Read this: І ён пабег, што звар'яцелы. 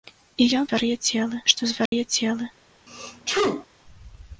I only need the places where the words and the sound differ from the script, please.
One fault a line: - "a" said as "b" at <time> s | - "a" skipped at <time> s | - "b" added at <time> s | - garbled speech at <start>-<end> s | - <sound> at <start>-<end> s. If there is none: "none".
- "пабег" said as "звар'яцелы" at 0.7 s
- dropout at 1.9-1.9 s
- sneeze at 2.9-3.7 s